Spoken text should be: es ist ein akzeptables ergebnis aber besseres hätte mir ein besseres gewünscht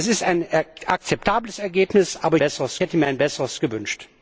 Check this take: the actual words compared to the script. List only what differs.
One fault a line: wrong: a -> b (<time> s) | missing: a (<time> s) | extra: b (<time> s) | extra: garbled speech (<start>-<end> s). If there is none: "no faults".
no faults